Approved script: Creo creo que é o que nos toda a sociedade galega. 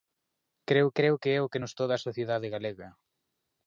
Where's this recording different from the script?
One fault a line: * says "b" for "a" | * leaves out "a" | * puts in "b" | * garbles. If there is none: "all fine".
all fine